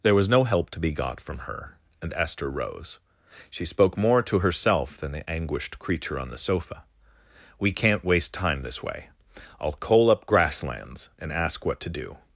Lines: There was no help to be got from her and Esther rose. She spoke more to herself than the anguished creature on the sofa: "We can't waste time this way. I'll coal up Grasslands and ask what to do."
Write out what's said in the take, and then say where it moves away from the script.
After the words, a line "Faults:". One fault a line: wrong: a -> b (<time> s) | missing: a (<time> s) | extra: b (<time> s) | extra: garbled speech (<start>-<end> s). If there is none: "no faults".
There was no help to be got from her and Esther rose. She spoke more to herself than the anguished creature on the sofa: "We can't waste time this way. I'll coal up Grasslands and ask what to do."
Faults:
no faults